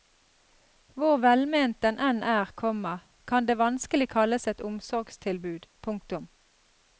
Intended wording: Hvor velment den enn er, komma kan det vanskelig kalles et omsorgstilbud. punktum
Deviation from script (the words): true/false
false